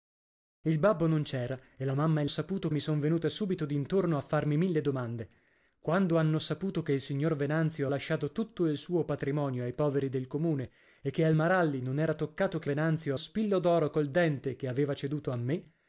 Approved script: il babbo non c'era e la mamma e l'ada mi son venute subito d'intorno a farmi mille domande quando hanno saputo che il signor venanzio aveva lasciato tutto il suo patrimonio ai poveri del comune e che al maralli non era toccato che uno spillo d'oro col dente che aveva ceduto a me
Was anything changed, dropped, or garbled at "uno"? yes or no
yes